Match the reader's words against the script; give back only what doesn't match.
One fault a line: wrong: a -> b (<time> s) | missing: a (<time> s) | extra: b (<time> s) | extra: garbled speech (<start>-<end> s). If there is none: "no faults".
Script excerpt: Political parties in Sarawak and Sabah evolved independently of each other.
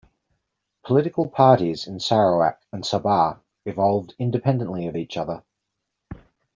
no faults